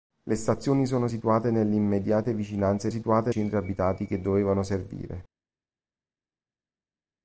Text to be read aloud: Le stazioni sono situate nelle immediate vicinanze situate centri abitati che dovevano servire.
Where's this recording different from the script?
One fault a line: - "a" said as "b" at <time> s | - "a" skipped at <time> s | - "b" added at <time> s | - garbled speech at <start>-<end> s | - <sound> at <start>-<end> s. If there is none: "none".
none